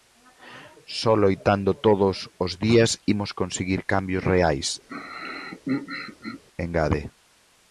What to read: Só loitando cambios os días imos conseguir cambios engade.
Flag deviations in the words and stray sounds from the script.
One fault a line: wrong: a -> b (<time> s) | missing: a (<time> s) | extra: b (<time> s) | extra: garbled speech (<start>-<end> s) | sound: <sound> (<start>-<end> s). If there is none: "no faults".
wrong: cambios -> todos (1.9 s)
extra: reais (4.3 s)
sound: throat clearing (4.9-6.4 s)